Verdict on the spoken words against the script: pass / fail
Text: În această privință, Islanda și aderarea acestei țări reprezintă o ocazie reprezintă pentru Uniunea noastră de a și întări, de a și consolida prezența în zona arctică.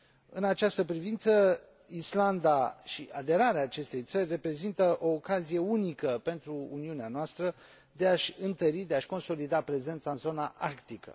fail